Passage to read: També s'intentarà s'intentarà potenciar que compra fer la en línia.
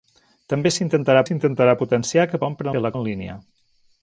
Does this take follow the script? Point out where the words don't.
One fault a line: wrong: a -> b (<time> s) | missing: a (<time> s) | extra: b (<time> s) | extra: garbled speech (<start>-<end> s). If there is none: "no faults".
no faults